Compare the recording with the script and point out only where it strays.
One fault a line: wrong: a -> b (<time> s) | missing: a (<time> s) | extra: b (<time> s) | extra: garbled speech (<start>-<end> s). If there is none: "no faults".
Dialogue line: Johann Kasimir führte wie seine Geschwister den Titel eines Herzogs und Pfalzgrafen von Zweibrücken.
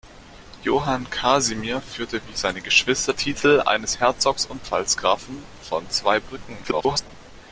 missing: den (3.1 s)
extra: garbled speech (6.6-7.1 s)